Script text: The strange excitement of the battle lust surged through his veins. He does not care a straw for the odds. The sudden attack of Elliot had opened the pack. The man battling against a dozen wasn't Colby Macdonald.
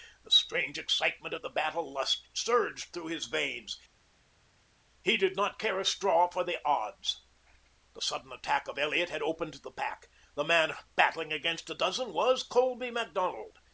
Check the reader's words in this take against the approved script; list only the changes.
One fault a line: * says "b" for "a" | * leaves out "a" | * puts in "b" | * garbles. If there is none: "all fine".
* says "did" for "does"
* says "was" for "wasn't"